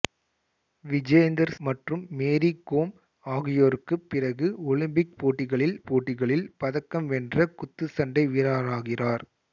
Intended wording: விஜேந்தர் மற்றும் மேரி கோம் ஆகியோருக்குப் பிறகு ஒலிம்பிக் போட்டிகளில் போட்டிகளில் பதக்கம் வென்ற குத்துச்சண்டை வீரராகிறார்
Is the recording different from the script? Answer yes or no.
no